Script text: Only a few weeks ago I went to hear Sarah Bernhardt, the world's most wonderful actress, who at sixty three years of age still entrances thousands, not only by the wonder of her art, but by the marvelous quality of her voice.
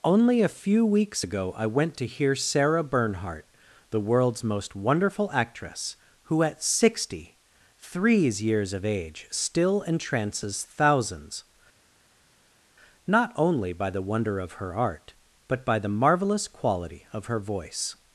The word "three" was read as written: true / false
false